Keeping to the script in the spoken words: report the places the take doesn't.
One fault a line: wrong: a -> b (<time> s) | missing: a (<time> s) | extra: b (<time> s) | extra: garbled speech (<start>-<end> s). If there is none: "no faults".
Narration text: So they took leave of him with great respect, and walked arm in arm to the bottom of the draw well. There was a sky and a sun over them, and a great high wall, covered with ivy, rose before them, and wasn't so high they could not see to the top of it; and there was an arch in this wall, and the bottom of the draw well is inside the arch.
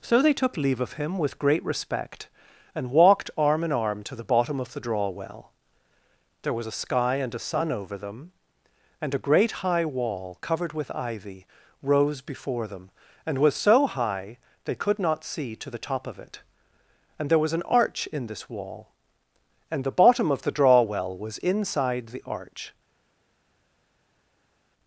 wrong: wasn't -> was (13.4 s)
wrong: is -> was (21.2 s)